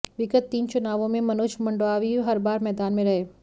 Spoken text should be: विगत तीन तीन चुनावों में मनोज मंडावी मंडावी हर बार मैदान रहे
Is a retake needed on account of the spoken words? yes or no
yes